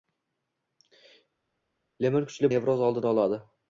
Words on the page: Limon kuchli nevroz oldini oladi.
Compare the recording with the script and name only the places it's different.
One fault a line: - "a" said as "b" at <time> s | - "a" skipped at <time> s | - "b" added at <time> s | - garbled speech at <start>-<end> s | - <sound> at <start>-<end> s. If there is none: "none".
none